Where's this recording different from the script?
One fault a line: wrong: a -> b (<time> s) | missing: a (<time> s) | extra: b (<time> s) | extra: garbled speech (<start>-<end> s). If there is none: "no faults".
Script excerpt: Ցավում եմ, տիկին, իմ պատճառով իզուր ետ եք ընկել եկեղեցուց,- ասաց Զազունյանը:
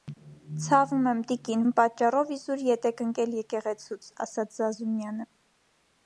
no faults